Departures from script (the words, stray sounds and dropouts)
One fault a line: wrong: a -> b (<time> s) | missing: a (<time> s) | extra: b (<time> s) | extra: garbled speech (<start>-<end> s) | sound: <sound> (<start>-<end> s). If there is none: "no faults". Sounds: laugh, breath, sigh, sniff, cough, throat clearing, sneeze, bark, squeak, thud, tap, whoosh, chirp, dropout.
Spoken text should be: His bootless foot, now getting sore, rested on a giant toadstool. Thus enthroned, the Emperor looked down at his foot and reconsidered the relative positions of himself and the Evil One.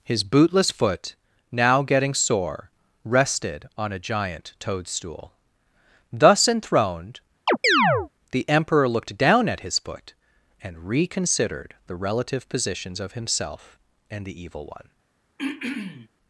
sound: chirp (7.5-8.1 s)
sound: throat clearing (15.4-16.1 s)